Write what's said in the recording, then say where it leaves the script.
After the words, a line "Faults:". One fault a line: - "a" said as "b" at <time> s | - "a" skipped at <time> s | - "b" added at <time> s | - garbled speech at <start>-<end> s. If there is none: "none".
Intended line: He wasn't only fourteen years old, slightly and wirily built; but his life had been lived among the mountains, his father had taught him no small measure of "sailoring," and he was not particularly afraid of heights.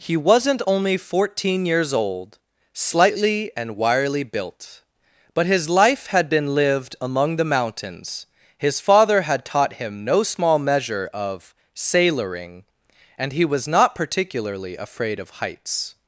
He wasn't only fourteen years old, slightly and wirily built; but his life had been lived among the mountains, his father had taught him no small measure of "sailoring," and he was not particularly afraid of heights.
Faults:
none